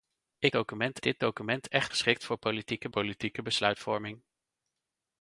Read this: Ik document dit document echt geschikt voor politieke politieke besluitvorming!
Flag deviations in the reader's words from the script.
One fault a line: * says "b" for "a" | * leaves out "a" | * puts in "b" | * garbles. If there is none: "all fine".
all fine